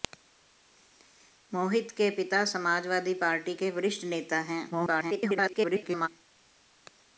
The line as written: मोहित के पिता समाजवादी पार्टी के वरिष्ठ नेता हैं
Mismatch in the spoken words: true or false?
true